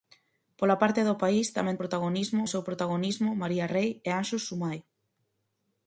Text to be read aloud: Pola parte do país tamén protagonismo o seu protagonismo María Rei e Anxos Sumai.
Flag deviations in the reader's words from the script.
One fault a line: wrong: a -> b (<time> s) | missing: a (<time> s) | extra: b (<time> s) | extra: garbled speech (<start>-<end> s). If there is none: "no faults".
no faults